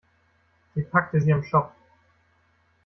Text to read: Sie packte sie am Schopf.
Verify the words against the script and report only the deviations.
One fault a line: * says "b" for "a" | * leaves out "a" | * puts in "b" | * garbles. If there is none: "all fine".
all fine